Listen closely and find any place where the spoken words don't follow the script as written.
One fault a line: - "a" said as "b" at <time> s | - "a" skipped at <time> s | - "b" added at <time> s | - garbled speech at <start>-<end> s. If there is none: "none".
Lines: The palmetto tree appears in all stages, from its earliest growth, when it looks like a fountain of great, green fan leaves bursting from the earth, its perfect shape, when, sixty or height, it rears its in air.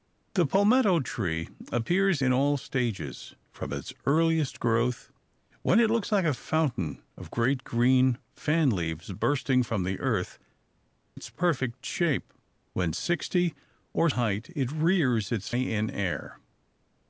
none